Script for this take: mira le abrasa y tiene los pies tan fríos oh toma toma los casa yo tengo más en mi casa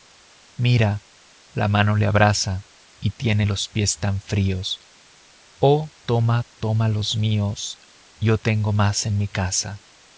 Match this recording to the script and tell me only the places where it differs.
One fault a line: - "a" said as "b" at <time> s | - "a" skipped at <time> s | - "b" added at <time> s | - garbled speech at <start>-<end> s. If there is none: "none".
- "la mano" added at 1.5 s
- "casa" said as "míos" at 7.2 s